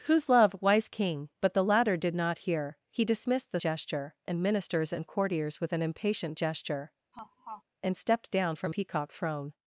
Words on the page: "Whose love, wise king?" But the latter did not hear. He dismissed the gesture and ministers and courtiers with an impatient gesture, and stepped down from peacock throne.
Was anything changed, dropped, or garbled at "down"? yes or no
no